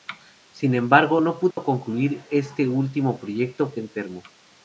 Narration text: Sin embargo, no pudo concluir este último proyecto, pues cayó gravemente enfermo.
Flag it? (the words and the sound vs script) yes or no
yes